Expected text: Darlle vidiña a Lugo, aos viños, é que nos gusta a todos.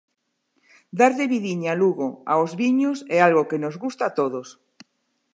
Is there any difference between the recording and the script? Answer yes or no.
yes